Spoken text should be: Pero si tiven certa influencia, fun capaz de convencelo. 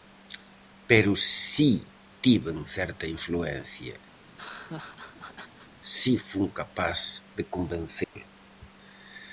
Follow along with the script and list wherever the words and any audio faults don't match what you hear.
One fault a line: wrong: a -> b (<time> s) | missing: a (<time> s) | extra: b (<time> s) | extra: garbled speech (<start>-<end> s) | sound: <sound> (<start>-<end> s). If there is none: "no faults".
sound: laugh (4.2-5.7 s)
extra: si (6.0 s)
sound: dropout (8.0-8.2 s)